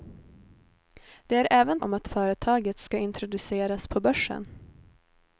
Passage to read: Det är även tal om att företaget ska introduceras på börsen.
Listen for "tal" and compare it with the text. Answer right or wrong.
wrong